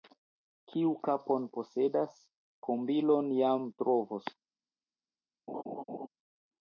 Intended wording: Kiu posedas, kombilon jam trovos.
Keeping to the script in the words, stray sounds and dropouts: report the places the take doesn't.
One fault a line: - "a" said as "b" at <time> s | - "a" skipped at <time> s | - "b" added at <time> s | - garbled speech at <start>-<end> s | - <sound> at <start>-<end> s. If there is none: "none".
- "kapon" added at 1.1 s
- laugh at 5.5-6.1 s